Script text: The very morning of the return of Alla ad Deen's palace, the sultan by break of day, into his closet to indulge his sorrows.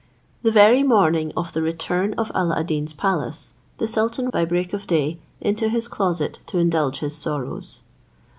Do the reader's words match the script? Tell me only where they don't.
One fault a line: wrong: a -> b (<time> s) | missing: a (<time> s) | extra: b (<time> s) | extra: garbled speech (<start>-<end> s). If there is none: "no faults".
no faults